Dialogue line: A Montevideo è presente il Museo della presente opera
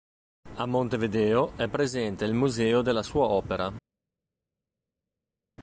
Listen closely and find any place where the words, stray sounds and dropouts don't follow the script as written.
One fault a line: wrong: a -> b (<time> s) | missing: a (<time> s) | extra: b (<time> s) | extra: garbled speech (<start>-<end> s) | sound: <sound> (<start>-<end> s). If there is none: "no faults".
wrong: presente -> sua (3.0 s)